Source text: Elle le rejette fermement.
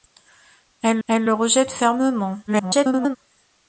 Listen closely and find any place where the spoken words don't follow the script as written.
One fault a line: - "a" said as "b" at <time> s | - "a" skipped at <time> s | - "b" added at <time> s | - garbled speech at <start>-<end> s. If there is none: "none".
- "elle" added at 1.1 s
- garbled speech at 2.5-3.2 s